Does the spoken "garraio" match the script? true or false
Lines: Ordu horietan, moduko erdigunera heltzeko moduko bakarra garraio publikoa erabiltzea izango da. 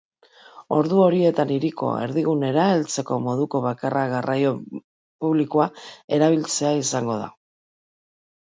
true